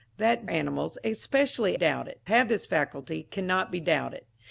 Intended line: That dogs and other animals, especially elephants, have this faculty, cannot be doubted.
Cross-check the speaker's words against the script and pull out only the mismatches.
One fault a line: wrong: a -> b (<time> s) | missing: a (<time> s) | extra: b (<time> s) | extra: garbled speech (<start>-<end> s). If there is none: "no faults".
missing: dogs and other (0.5 s)
wrong: elephants -> doubted (1.7 s)